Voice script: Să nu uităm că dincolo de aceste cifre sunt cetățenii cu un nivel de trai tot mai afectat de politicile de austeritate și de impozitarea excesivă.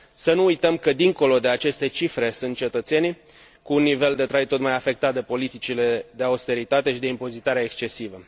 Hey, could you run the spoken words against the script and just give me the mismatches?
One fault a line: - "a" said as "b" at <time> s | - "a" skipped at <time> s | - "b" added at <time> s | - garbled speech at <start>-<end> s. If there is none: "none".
none